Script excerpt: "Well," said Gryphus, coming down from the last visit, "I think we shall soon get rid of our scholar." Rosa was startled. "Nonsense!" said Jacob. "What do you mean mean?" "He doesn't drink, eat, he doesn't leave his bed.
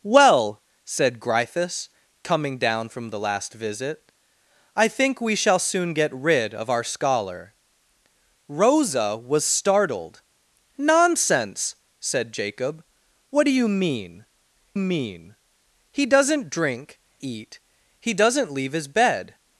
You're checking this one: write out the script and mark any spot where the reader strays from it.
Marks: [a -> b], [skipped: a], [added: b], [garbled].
"Well," said Gryphus, coming down from the last visit, "I think we shall soon get rid of our scholar." Rosa was startled. "Nonsense!" said Jacob. "What do you mean mean?" "He doesn't drink, eat, he doesn't leave his bed.